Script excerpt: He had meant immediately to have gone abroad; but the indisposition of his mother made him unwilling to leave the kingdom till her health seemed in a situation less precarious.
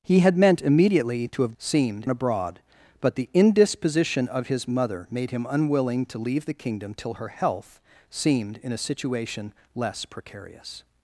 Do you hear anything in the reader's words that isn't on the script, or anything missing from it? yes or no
yes